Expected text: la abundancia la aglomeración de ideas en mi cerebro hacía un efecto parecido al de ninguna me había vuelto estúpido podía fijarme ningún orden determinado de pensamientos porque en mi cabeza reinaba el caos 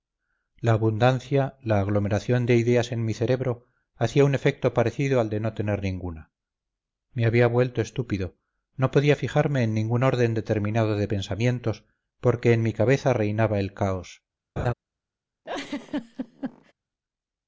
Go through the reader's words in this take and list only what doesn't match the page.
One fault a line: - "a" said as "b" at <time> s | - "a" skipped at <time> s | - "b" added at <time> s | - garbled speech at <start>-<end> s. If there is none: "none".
- "no tener" added at 5.4 s
- "no" added at 8.8 s
- "en" added at 9.6 s